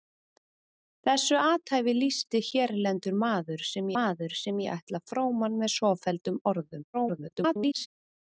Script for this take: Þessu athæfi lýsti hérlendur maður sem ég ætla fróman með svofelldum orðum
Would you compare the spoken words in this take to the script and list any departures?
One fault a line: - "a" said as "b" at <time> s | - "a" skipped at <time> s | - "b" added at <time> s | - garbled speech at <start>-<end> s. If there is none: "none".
- "maður sem" added at 4.0 s
- garbled speech at 6.9-7.9 s